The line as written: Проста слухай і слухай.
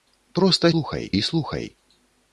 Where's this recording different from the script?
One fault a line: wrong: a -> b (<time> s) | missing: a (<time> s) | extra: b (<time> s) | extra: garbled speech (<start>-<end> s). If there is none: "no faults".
no faults